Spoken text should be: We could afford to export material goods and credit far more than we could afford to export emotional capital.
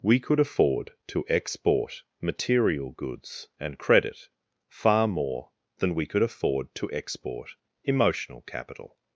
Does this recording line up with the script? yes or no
yes